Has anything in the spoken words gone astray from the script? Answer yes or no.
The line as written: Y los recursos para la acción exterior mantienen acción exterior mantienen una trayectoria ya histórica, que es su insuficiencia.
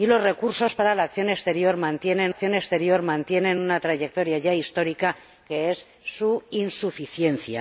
no